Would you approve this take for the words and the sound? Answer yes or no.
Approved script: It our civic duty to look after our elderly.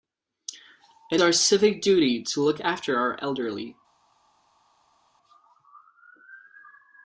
yes